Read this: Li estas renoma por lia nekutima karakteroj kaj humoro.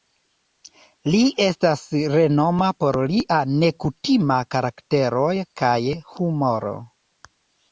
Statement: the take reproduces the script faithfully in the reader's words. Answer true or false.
true